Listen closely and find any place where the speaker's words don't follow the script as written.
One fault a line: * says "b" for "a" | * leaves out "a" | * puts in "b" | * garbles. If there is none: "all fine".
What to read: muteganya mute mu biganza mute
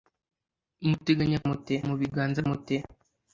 all fine